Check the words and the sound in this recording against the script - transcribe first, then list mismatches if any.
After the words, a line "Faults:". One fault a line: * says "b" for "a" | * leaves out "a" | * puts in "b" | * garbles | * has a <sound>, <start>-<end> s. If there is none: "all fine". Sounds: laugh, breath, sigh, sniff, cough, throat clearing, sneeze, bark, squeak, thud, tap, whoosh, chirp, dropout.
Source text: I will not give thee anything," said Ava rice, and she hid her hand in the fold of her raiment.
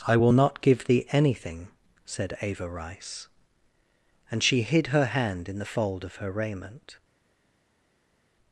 I will not give thee anything," said Ava rice, and she hid her hand in the fold of her raiment.
Faults:
all fine